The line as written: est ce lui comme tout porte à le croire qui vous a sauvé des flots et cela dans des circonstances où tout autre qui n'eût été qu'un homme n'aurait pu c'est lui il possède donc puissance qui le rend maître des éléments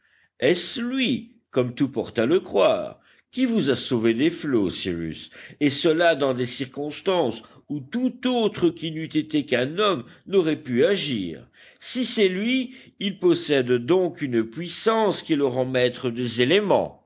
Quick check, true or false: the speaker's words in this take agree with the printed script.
false